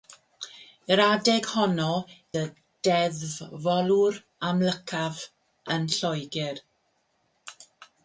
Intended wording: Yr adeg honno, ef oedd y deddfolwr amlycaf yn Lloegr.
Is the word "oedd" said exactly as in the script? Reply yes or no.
no